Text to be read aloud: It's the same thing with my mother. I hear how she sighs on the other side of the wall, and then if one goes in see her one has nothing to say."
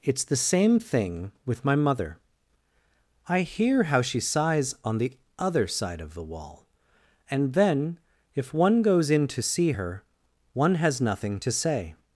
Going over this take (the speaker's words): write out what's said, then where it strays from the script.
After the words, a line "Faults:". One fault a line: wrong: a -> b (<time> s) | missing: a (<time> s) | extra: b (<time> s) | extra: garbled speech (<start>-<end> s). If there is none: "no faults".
It's the same thing with my mother. I hear how she sighs on the other side of the wall, and then if one goes in to see her one has nothing to say."
Faults:
extra: to (9.3 s)